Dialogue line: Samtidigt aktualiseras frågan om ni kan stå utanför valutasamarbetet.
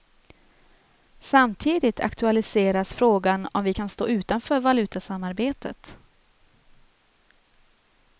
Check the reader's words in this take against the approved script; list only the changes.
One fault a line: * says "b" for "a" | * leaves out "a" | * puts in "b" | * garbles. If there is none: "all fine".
* says "vi" for "ni"